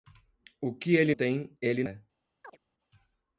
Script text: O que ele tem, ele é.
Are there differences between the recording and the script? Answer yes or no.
no